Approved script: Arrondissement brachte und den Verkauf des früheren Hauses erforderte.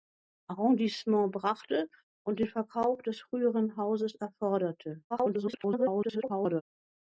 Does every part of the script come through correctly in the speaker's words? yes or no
no